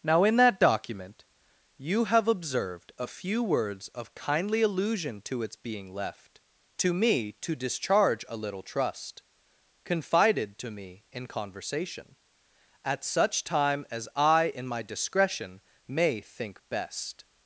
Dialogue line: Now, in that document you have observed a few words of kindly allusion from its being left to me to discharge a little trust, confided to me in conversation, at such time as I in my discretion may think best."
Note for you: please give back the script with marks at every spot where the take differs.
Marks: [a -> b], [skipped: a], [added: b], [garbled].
Now, in that document you have observed a few words of kindly allusion [from -> to] its being left to me to discharge a little trust, confided to me in conversation, at such time as I in my discretion may think best."